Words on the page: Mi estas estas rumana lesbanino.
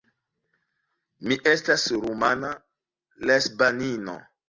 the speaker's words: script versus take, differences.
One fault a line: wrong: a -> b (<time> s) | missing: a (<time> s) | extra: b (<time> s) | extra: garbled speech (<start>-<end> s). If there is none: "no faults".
missing: estas (1.9 s)